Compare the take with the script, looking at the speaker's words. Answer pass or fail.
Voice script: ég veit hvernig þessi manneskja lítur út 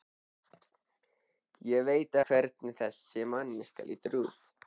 pass